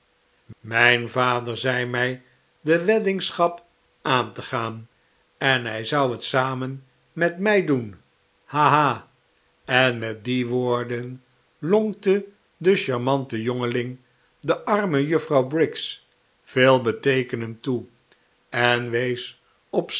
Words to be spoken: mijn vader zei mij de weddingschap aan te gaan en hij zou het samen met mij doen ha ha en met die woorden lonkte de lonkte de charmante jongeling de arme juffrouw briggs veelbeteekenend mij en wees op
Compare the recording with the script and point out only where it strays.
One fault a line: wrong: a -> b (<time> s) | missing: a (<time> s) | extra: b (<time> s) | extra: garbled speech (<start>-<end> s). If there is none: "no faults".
missing: lonkte de (12.8 s)
wrong: mij -> toe (17.6 s)